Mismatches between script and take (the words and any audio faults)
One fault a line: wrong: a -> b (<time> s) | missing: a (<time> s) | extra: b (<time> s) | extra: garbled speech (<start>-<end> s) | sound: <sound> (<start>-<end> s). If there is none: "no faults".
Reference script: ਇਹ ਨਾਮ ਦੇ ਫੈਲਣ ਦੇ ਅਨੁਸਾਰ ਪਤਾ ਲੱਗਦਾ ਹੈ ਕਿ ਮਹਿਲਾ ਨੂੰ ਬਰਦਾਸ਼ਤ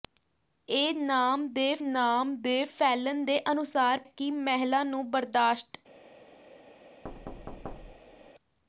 extra: ਨਾਮ ਦੇ (1.8 s)
missing: ਪਤਾ ਲੱਗਦਾ ਹੈ (4.0 s)
sound: thud (7.0-8.3 s)